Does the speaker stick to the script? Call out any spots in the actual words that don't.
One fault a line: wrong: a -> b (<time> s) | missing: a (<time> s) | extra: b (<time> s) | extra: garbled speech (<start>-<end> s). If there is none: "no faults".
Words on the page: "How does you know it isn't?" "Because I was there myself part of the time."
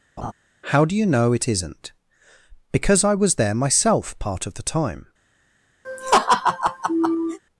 wrong: does -> do (0.9 s)